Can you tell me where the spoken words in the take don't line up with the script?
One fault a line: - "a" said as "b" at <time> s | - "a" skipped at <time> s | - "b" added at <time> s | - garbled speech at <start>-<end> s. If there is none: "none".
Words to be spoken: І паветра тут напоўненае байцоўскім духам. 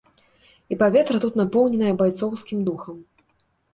none